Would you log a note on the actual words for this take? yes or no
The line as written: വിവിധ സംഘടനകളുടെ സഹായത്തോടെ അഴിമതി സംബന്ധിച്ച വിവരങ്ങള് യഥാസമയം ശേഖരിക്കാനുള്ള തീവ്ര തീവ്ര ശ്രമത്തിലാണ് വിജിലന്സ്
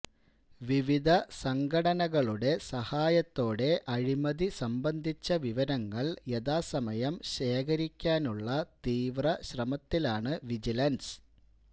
yes